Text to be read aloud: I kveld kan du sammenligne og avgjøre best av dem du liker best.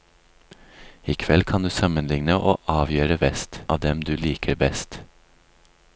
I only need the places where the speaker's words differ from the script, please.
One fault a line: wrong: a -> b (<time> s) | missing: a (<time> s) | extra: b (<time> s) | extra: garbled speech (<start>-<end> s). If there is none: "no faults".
no faults